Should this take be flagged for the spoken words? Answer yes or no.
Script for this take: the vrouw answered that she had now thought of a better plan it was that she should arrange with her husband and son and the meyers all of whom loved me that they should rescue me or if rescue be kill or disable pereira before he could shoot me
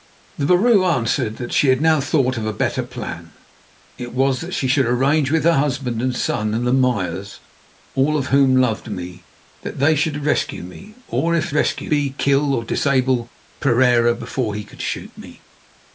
no